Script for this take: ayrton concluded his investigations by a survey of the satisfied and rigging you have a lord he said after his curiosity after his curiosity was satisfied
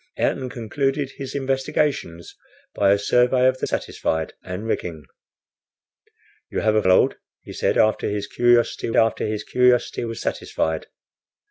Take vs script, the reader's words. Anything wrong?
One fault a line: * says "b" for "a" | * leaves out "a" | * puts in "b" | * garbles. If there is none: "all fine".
all fine